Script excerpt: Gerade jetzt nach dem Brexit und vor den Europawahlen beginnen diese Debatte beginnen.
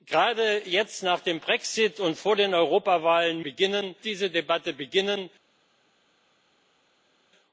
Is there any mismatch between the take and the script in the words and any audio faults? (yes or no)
no